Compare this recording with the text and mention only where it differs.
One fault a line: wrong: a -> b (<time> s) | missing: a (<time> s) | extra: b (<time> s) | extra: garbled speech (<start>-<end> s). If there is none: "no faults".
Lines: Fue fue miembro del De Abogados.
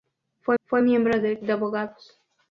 no faults